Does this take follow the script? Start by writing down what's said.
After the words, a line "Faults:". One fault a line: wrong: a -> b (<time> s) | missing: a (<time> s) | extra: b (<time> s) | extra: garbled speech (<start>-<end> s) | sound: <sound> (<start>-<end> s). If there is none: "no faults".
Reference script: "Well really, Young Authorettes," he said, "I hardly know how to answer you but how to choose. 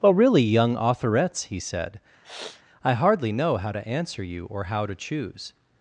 "Well really, Young Authorettes," he said, "I hardly know how to answer you or how to choose.
Faults:
sound: sniff (2.2-2.6 s)
wrong: but -> or (4.5 s)